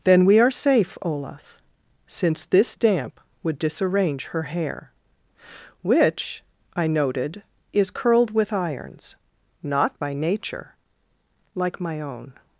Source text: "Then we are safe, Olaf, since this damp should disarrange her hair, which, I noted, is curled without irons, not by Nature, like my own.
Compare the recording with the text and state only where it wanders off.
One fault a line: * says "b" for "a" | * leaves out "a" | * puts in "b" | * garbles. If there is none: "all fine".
* says "would" for "should"
* says "with" for "without"